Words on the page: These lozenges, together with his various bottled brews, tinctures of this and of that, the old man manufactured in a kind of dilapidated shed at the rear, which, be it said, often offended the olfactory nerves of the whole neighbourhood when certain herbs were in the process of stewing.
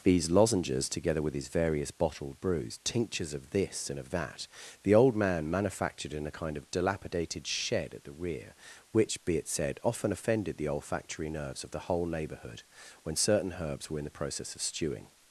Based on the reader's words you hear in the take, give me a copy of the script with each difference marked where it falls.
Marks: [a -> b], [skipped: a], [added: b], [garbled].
These lozenges, together with his various bottled brews, tinctures of this and of that, the old man manufactured in a kind of dilapidated shed at the rear, which, be it said, often offended the olfactory nerves of the whole neighbourhood when certain herbs were in the process of stewing.